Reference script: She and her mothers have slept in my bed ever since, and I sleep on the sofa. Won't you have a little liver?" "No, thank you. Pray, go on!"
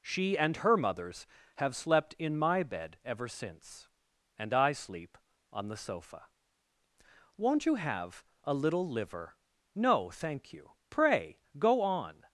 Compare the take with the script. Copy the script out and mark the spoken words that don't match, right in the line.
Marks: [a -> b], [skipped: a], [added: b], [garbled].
She and her mothers have slept in my bed ever since, and I sleep on the sofa. Won't you have a little liver?" "No, thank you. Pray, go on!"